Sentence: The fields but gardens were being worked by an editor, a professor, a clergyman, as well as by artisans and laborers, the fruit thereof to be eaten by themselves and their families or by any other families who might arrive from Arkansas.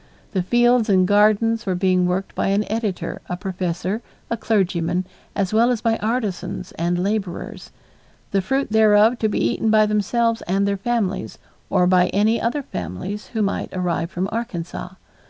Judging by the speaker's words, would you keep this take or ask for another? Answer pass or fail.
fail